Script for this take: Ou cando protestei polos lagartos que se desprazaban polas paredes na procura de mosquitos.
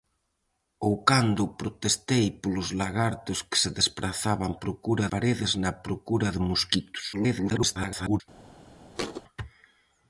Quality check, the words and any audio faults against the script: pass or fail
fail